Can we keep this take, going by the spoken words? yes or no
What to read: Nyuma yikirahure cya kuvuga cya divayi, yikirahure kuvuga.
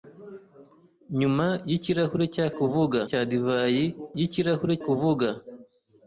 yes